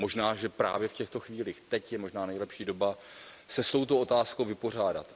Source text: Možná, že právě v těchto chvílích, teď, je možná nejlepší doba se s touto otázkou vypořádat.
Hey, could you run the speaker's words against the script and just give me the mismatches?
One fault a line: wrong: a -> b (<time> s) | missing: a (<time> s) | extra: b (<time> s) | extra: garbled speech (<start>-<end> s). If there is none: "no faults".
no faults